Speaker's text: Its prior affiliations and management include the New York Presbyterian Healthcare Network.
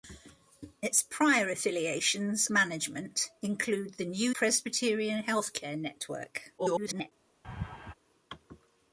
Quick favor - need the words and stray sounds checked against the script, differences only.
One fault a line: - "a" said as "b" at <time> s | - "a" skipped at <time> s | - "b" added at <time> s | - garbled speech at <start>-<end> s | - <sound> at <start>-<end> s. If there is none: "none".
- "and" skipped at 2.5 s
- "York" skipped at 4.3 s
- garbled speech at 6.6-7.1 s
- laugh at 7.4-7.9 s